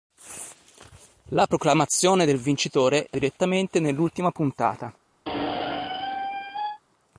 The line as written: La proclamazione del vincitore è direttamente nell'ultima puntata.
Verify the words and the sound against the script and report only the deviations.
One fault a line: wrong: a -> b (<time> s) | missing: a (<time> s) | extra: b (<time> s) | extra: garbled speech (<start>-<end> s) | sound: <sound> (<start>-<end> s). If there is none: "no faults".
sound: squeak (5.3-6.8 s)